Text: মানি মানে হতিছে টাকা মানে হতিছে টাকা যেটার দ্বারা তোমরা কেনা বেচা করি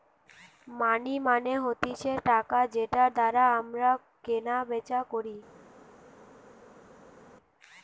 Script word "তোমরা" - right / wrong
wrong